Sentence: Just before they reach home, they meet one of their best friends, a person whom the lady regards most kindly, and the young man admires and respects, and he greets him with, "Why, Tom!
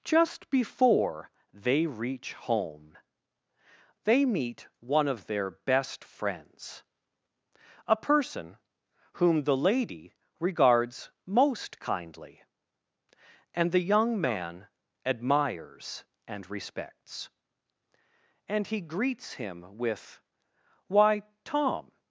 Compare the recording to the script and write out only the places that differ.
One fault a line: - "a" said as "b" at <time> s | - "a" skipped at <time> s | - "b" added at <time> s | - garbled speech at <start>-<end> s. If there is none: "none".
none